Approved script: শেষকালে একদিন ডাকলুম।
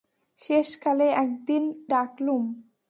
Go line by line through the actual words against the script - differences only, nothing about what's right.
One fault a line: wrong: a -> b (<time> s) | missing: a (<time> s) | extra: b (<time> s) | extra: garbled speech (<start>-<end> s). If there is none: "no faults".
no faults